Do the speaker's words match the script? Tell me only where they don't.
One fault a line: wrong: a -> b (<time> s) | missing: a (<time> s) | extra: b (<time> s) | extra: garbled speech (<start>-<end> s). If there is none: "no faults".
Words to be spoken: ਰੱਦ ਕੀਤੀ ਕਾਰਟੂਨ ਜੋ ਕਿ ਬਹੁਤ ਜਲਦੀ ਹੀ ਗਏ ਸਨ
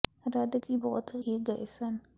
missing: ਕੀਤੀ ਕਾਰਟੂਨ ਜੋ (0.6 s)
missing: ਜਲਦੀ (1.1 s)